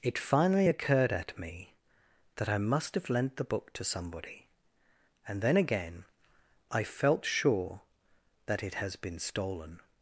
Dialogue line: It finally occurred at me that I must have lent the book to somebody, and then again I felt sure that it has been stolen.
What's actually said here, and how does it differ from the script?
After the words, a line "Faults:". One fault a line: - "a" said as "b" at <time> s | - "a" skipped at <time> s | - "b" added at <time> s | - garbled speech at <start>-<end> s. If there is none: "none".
It finally occurred at me that I must have lent the book to somebody, and then again I felt sure that it has been stolen.
Faults:
none